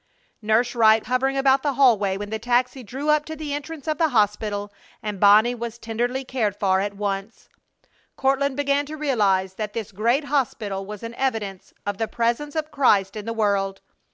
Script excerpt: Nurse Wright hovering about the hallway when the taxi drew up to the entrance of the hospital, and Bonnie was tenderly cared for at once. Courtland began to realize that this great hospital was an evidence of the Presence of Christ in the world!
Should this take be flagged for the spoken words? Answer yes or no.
no